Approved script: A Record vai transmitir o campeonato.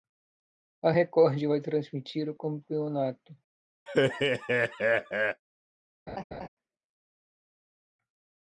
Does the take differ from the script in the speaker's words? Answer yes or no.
no